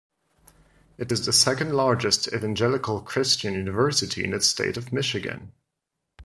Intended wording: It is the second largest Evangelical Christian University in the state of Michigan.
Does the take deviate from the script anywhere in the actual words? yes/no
no